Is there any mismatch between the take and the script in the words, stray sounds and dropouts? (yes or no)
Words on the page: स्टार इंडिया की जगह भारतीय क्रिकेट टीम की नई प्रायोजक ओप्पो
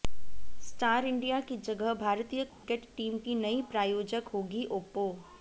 yes